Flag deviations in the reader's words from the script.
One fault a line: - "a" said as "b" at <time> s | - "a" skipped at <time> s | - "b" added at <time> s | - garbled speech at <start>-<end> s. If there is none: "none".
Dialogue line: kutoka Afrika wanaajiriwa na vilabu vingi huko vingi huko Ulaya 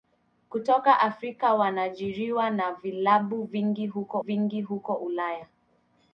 none